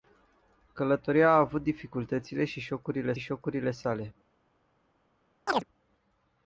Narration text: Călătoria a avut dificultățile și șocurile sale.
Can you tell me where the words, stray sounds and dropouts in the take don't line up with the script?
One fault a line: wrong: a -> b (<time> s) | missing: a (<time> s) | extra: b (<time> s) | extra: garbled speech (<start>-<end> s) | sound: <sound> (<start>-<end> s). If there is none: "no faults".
extra: șocurile (3.2 s)
sound: chirp (5.5-5.7 s)